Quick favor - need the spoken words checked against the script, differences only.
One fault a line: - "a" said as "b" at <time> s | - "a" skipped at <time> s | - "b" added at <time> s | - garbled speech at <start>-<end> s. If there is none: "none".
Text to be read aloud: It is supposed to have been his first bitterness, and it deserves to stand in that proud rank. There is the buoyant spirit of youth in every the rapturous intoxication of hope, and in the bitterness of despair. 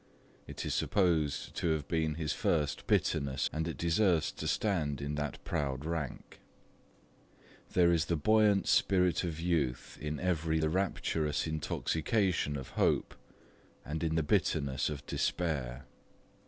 none